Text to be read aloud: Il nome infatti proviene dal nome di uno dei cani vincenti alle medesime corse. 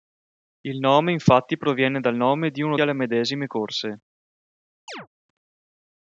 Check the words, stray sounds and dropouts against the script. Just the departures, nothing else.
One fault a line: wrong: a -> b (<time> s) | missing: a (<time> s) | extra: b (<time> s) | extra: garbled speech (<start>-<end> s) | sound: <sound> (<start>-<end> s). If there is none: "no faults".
missing: dei cani vincenti (2.8 s)
sound: chirp (4.9-5.1 s)